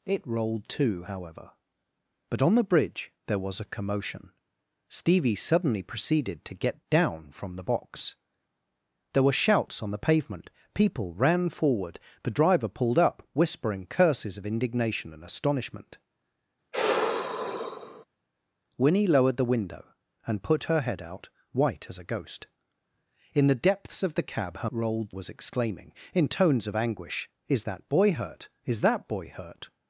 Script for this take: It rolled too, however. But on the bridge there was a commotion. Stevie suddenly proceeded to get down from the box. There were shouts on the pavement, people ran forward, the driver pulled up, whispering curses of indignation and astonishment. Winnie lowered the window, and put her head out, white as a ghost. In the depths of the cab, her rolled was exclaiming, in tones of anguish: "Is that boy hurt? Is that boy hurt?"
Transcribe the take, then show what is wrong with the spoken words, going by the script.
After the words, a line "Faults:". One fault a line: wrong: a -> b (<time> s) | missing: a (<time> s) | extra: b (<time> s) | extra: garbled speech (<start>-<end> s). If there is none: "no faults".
It rolled too, however. But on the bridge there was a commotion. Stevie suddenly proceeded to get down from the box. There were shouts on the pavement, people ran forward, the driver pulled up, whispering curses of indignation and astonishment. Winnie lowered the window, and put her head out, white as a ghost. In the depths of the cab, her rolled was exclaiming, in tones of anguish: "Is that boy hurt? Is that boy hurt?"
Faults:
no faults